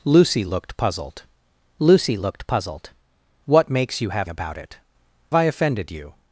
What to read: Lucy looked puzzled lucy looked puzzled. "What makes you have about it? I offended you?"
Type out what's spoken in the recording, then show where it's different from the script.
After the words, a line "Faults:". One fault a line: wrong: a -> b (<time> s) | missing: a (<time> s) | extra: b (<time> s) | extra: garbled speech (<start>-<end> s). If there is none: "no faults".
Lucy looked puzzled lucy looked puzzled. "What makes you have about it? I offended you?"
Faults:
no faults